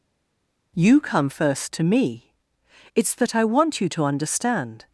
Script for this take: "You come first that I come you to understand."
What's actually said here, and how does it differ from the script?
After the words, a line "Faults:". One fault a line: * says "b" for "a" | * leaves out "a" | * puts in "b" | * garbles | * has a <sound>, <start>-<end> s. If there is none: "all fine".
"You come first to me. It's that I want you to understand."
Faults:
* puts in "to me It's"
* says "want" for "come"